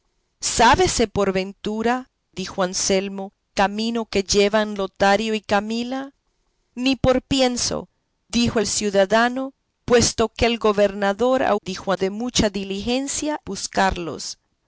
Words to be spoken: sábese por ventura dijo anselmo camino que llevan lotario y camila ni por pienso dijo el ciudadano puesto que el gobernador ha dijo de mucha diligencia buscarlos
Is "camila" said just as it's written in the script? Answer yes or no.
yes